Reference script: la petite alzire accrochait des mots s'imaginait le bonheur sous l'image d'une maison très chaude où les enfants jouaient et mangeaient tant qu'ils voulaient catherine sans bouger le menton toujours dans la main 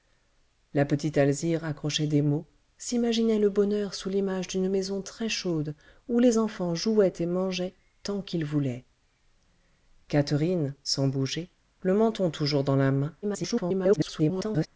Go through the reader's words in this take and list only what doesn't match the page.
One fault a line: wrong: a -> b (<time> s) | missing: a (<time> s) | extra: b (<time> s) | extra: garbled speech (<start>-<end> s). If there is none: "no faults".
extra: garbled speech (13.2-14.7 s)